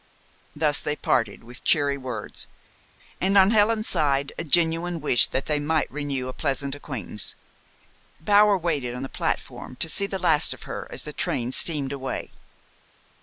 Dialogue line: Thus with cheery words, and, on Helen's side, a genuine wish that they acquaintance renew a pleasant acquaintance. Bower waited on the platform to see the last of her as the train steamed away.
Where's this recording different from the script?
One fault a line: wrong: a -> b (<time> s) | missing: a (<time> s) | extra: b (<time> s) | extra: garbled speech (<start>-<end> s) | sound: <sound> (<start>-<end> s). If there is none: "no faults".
extra: they parted (0.8 s)
wrong: acquaintance -> might (5.6 s)